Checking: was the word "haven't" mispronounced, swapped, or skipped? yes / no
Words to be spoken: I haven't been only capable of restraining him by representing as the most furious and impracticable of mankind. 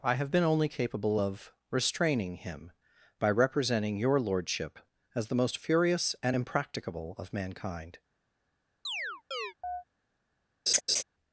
yes